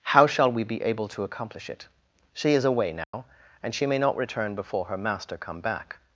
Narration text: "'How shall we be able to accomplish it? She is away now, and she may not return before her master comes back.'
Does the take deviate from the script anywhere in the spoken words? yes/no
yes